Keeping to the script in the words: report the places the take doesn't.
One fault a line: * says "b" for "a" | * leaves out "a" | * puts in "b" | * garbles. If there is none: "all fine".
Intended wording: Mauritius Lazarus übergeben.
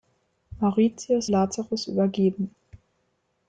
all fine